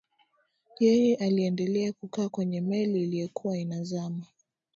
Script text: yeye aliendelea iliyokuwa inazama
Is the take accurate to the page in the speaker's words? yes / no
no